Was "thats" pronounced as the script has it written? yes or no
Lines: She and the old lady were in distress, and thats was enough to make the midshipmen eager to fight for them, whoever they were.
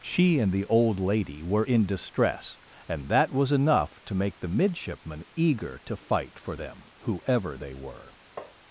no